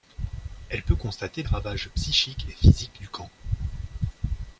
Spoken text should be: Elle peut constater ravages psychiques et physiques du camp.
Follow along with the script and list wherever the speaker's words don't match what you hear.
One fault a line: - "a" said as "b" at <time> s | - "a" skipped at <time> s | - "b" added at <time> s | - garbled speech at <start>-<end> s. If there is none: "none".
none